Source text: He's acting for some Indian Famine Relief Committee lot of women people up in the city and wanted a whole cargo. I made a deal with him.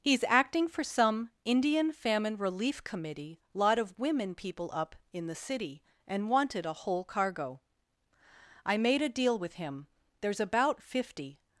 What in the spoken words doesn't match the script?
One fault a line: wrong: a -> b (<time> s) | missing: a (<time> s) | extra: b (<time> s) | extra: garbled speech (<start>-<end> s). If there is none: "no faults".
extra: There's about fifty (10.2 s)